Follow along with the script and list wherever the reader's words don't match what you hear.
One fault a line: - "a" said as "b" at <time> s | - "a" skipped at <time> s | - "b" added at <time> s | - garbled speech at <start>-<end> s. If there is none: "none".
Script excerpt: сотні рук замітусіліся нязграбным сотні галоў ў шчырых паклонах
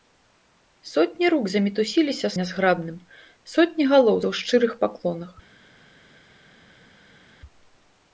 none